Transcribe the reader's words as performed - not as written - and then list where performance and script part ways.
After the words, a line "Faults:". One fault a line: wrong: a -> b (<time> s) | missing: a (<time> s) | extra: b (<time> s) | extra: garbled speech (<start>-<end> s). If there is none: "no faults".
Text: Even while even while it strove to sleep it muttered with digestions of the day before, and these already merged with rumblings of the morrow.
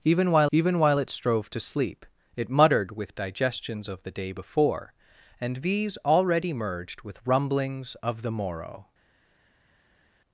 Even while even while it strove to sleep it muttered with digestions of the day before, and these already merged with rumblings of the morrow.
Faults:
no faults